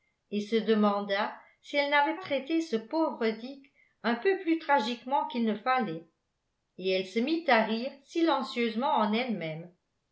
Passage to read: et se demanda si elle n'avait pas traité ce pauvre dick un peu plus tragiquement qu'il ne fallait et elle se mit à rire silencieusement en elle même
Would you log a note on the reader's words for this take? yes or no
yes